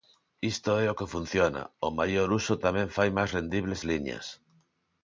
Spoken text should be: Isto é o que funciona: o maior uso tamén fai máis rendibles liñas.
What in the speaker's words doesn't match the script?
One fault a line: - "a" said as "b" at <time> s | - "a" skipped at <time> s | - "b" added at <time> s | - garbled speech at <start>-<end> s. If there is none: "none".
none